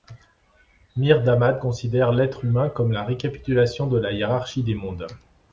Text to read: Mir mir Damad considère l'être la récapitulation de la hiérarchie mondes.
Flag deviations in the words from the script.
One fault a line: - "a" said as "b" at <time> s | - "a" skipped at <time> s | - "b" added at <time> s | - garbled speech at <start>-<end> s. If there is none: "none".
- "mir" skipped at 1.2 s
- "humain comme" added at 2.4 s
- "des" added at 4.6 s